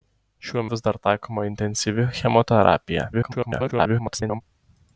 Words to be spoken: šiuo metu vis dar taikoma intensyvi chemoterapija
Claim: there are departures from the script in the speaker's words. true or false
true